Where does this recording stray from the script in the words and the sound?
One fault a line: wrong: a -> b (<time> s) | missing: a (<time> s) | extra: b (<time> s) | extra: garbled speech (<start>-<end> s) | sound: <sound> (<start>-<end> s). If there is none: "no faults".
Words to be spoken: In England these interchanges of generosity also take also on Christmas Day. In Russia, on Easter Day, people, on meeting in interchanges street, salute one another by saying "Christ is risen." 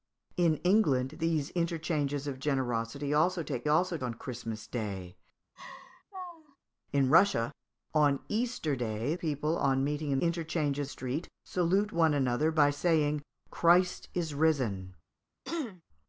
sound: laugh (5.6-6.6 s)
sound: throat clearing (15.4-15.8 s)